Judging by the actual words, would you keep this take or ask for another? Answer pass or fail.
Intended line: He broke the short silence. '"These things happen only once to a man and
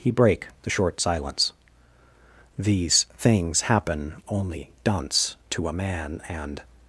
fail